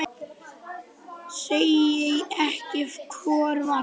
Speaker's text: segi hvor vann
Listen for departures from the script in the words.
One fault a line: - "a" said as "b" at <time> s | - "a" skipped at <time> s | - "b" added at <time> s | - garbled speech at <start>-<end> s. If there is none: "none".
- "ekki" added at 2.5 s